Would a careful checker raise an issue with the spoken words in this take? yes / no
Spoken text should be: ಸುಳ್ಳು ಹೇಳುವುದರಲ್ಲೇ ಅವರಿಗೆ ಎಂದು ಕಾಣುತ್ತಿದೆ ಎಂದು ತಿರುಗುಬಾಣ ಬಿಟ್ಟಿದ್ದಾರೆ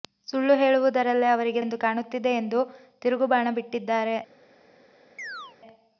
no